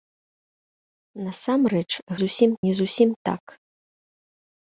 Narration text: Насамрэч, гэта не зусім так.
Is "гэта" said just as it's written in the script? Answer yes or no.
no